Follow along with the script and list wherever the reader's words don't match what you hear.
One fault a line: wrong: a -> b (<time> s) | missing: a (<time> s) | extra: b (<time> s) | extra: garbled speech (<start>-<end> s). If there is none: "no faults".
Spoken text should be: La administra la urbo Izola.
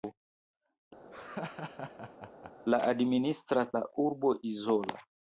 no faults